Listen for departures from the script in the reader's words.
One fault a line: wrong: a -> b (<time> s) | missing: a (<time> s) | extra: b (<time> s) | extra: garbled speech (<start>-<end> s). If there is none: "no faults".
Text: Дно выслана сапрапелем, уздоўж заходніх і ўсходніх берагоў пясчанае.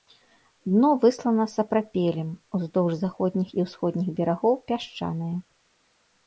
no faults